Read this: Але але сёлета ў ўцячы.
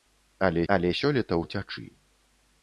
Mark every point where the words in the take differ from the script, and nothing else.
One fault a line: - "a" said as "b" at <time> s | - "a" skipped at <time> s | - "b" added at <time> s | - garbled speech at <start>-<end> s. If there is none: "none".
none